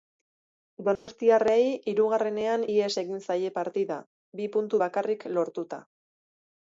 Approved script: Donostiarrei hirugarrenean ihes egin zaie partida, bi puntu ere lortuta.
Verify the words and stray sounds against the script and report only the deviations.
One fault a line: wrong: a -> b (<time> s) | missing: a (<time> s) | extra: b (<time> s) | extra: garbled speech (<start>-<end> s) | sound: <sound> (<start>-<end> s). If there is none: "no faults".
sound: dropout (1.0-1.1 s)
wrong: ere -> bakarrik (4.8 s)